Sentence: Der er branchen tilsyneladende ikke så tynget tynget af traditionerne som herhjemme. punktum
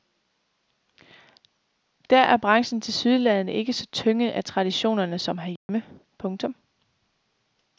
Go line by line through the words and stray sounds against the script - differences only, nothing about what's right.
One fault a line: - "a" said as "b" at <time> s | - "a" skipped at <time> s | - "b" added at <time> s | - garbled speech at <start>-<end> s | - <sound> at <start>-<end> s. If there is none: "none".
- "tynget" skipped at 4.3 s
- dropout at 5.6-5.7 s